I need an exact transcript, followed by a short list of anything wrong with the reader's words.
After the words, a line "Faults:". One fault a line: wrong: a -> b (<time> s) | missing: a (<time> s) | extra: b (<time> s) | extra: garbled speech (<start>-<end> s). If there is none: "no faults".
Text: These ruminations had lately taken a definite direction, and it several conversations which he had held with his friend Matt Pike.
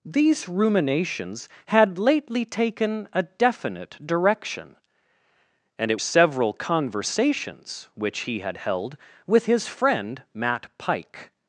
These ruminations had lately taken a definite direction, and it several conversations which he had held with his friend Matt Pike.
Faults:
no faults